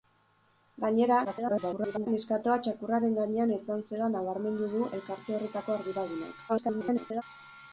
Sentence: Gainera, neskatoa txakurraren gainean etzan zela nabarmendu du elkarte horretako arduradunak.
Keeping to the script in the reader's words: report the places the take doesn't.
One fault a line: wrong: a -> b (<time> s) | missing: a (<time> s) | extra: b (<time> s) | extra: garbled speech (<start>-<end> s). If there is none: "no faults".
extra: garbled speech (1.2-2.1 s)
extra: garbled speech (6.5-7.2 s)